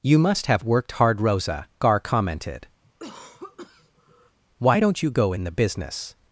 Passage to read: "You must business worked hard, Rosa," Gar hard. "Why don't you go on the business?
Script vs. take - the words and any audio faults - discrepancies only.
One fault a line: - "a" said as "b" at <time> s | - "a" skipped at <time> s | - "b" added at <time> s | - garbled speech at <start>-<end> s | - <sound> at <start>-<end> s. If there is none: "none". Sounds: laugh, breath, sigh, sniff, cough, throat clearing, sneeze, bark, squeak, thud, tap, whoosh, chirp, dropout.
- "business" said as "have" at 0.5 s
- "hard" said as "commented" at 2.0 s
- cough at 2.8-4.4 s
- "on" said as "in" at 5.3 s